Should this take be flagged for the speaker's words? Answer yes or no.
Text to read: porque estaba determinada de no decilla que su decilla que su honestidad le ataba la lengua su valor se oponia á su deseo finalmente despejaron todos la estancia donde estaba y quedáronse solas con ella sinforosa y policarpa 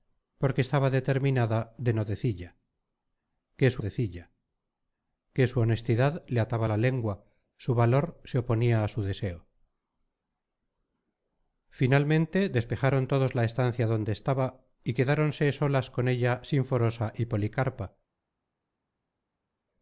no